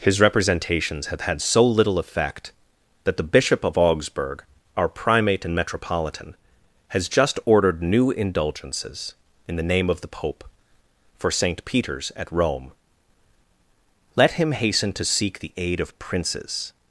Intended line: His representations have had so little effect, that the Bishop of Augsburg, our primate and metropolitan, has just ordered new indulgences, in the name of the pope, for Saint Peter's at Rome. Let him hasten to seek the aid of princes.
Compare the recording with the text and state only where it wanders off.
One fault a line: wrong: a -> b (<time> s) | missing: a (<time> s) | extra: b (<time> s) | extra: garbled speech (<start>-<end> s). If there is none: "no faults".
no faults